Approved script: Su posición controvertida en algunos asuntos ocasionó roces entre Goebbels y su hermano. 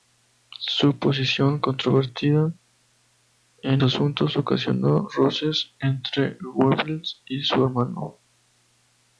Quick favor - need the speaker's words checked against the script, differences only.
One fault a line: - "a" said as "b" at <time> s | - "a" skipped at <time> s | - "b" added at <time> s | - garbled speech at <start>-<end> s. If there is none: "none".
- "algunos" skipped at 3.8 s